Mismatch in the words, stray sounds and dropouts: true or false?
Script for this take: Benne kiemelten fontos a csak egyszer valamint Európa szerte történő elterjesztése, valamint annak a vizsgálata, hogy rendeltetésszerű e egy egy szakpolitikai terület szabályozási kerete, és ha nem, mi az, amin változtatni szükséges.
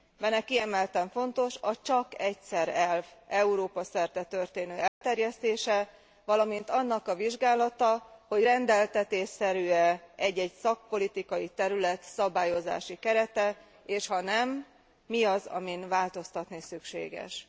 true